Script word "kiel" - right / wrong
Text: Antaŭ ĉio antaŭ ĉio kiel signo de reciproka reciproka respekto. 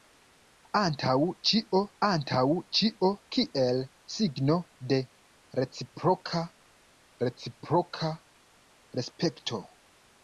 right